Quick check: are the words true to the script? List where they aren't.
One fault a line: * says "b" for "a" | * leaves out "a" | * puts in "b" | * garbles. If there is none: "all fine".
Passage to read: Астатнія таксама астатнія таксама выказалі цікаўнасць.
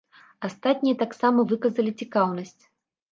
* leaves out "астатнія таксама"